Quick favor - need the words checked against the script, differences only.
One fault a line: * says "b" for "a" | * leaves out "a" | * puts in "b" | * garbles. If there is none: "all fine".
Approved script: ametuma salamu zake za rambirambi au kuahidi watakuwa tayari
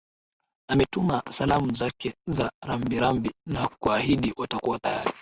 * says "na" for "au"